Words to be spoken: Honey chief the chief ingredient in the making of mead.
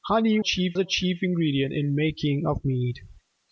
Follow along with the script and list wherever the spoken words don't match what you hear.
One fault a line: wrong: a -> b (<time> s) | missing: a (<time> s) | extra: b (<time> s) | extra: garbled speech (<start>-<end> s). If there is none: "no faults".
no faults